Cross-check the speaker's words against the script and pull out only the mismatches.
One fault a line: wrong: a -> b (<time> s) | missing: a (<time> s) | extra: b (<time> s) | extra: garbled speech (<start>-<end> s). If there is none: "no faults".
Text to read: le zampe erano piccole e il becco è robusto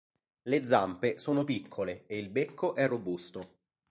wrong: erano -> sono (1.2 s)